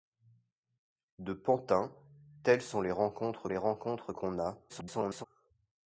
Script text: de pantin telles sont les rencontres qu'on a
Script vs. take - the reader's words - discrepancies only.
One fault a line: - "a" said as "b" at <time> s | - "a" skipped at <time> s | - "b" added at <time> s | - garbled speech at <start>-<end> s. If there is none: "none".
- "les rencontres" added at 3.5 s
- garbled speech at 4.7-5.2 s